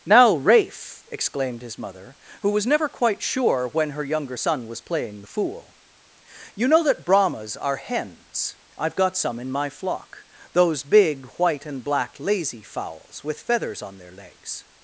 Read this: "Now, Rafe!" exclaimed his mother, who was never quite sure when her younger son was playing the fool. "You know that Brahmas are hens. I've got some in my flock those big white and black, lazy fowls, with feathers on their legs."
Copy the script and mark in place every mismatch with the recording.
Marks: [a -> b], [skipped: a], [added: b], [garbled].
"Now, Rafe!" exclaimed his mother, who was never quite sure when her younger son was playing the fool. "You know that Brahmas are hens. I've got some in my flock those big white and black, lazy fowls, with feathers on their legs."